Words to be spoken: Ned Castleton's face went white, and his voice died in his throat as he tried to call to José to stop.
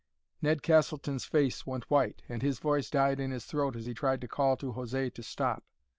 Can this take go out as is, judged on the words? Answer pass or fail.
pass